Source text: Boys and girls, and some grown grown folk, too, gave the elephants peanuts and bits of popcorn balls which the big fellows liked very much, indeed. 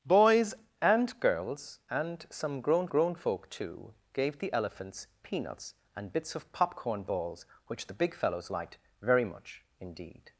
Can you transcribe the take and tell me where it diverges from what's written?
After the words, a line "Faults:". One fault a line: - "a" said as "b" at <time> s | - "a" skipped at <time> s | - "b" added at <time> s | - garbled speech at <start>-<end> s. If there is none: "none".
Boys and girls, and some grown grown folk, too, gave the elephants peanuts and bits of popcorn balls which the big fellows liked very much, indeed.
Faults:
none